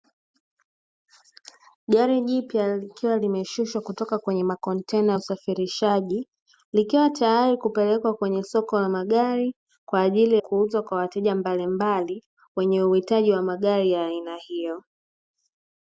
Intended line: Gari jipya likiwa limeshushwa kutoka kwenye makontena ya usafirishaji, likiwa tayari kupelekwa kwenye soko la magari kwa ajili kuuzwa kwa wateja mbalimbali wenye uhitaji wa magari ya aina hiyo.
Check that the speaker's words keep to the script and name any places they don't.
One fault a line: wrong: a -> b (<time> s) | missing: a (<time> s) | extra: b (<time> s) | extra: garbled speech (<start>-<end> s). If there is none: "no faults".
no faults